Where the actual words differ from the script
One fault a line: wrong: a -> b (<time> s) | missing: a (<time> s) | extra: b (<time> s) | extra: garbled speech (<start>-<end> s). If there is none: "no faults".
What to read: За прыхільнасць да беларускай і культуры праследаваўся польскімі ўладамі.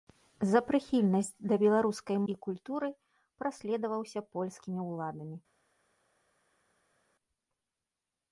no faults